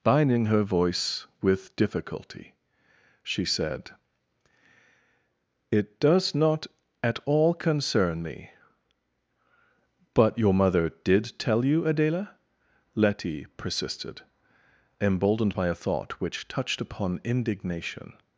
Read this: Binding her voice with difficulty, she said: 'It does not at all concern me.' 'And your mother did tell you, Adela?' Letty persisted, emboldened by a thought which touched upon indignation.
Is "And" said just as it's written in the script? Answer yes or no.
no